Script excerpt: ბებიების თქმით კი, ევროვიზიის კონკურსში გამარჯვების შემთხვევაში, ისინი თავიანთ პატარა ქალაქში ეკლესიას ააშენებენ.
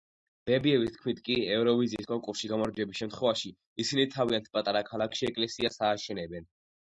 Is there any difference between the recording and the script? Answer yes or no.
no